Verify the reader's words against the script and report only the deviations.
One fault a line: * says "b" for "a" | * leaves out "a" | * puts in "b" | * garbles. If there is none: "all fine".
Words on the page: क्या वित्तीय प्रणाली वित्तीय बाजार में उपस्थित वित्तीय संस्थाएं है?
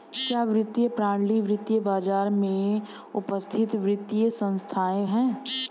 all fine